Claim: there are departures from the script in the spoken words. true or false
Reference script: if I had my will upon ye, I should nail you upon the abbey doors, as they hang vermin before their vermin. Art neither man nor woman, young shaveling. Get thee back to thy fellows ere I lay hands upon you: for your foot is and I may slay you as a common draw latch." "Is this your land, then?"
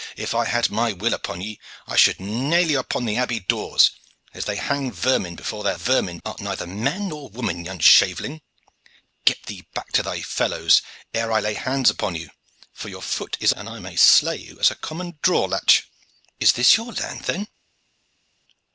false